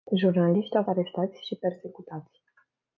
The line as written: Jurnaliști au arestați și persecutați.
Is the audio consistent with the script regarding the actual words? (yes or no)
yes